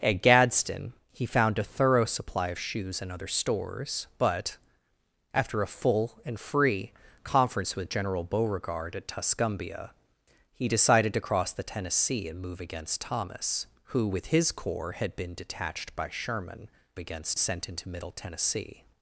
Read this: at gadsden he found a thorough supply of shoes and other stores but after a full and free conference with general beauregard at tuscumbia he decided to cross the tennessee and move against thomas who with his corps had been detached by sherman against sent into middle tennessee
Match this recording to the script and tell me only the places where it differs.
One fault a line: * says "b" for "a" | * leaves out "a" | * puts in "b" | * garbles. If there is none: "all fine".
all fine